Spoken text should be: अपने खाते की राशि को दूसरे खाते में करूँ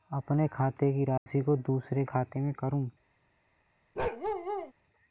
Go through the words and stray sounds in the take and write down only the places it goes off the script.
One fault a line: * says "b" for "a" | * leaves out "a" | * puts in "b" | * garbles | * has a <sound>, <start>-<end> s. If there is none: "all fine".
* has a dropout, 1.2-1.3 s
* has a bark, 4.0-4.7 s